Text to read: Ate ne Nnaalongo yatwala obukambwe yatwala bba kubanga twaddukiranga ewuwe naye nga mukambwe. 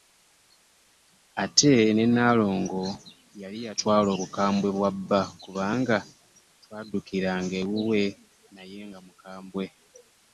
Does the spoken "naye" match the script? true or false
true